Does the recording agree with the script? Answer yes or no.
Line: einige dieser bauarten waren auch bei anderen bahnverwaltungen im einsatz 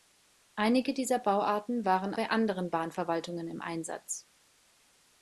no